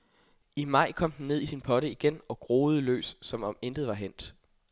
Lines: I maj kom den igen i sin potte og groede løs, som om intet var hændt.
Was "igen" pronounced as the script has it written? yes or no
no